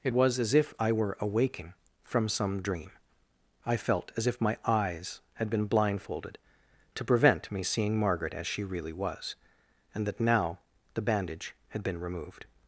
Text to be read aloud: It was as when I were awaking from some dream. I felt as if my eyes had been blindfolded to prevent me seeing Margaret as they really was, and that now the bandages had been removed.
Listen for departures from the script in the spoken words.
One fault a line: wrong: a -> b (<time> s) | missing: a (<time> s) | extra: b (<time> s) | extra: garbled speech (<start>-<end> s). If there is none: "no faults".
wrong: when -> if (0.5 s)
wrong: they -> she (8.5 s)
wrong: bandages -> bandage (11.0 s)